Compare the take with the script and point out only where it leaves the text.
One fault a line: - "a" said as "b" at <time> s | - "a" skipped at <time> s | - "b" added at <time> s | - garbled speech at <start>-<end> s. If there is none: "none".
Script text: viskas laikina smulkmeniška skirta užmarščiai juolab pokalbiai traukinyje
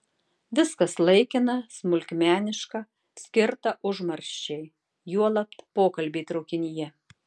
none